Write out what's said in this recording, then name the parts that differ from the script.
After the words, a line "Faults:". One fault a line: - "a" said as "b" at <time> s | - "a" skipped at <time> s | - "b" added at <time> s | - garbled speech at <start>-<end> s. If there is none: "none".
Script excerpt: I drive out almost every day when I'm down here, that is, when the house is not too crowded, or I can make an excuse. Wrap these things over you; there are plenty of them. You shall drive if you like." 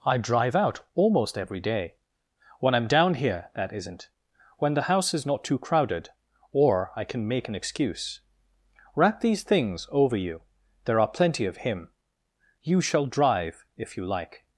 I drive out almost every day when I'm down here, that isn't, when the house is not too crowded, or I can make an excuse. Wrap these things over you; there are plenty of him. You shall drive if you like."
Faults:
- "is" said as "isn't" at 3.7 s
- "them" said as "him" at 11.6 s